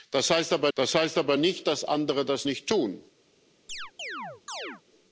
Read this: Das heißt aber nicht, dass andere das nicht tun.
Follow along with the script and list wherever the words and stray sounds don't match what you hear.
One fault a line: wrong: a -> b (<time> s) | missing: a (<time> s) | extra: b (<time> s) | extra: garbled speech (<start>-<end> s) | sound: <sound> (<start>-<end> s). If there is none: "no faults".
extra: das heißt aber (0.7 s)
sound: chirp (3.7-4.8 s)